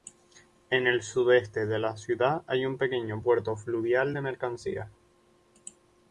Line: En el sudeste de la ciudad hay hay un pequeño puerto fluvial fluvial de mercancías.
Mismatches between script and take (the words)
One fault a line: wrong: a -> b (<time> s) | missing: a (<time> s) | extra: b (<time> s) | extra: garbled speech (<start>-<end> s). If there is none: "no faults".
missing: hay (2.6 s)
missing: fluvial (4.1 s)